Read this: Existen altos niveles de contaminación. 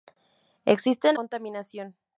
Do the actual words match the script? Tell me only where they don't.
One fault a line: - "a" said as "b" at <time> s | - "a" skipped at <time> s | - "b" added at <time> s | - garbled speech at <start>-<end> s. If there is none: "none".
- "altos niveles de" skipped at 1.2 s